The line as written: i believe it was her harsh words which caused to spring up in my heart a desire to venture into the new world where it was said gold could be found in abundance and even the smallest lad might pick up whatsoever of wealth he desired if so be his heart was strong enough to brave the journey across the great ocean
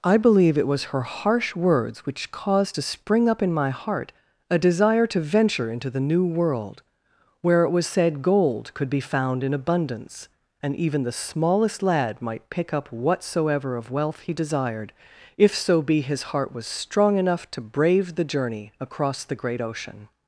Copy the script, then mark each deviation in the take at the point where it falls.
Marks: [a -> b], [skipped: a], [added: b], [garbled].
i believe it was her harsh words which caused to spring up in my heart a desire to venture into the new world where it was said gold could be found in abundance and even the smallest lad might pick up whatsoever of wealth he desired if so be his heart was strong enough to brave the journey across the great ocean